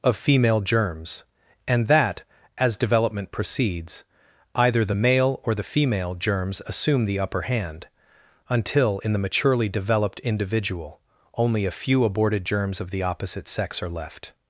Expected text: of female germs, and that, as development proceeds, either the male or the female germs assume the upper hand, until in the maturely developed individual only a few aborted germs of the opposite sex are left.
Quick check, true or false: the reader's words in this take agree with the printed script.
true